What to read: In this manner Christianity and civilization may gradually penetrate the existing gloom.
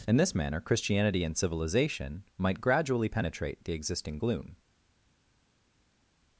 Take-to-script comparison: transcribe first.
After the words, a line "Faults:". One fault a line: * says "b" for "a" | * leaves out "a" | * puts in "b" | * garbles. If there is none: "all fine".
In this manner Christianity and civilization might gradually penetrate the existing gloom.
Faults:
* says "might" for "may"